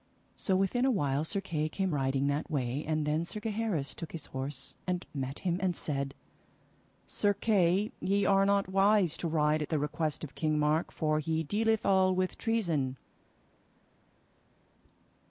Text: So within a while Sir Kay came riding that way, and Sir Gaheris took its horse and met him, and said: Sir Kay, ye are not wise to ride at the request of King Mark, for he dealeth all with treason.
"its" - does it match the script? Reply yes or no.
no